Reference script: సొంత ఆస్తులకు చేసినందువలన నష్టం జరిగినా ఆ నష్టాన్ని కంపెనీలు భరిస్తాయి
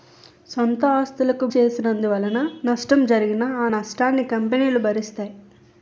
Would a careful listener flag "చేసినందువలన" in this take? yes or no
no